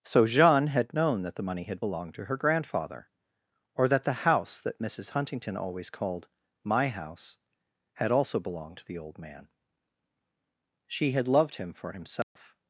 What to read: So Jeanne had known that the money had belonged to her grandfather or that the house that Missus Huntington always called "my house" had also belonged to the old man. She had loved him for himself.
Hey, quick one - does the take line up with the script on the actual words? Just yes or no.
yes